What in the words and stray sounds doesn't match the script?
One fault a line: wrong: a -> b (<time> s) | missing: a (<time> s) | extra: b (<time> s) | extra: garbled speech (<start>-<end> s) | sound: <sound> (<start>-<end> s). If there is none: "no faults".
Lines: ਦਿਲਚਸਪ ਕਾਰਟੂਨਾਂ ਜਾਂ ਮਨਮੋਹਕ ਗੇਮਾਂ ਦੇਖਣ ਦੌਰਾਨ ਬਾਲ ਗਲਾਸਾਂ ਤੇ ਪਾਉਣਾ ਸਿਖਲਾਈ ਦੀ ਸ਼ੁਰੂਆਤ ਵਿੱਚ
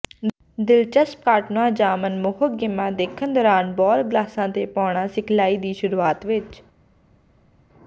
no faults